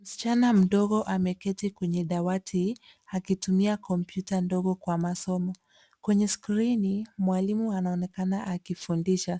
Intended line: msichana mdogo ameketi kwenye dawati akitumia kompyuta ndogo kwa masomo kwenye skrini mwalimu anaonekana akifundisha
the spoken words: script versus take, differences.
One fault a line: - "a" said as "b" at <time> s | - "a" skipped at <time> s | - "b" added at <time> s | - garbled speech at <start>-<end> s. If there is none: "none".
none